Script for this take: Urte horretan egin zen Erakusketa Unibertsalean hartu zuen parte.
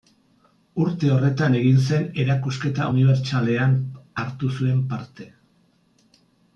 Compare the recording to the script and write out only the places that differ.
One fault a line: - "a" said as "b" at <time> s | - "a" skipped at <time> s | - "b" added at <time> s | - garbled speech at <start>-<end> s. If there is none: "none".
none